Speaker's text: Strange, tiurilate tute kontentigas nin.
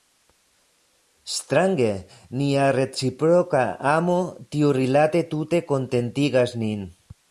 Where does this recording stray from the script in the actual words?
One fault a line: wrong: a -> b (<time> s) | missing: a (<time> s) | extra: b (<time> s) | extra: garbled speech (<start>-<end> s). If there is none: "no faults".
extra: nia reciproka amo (2.4 s)